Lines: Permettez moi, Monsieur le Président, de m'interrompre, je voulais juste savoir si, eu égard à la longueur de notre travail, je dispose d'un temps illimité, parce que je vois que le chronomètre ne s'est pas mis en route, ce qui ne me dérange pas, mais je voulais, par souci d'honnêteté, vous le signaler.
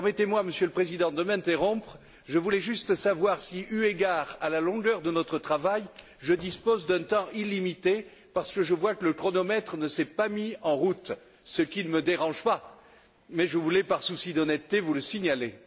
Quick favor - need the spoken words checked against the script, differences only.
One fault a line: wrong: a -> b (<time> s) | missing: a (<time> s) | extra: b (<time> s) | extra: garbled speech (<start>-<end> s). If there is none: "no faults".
no faults